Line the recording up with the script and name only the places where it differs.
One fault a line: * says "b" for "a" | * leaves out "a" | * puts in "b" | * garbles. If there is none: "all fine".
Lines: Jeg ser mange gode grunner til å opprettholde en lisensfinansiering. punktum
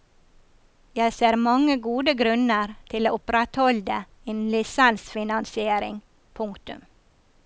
all fine